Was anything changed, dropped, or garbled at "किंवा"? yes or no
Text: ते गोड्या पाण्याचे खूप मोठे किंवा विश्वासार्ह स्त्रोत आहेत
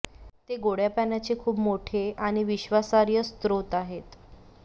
yes